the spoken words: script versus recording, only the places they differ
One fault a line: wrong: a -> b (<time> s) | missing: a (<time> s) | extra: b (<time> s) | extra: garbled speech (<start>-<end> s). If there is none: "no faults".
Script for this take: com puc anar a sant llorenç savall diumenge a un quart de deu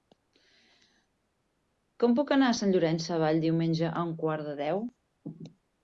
no faults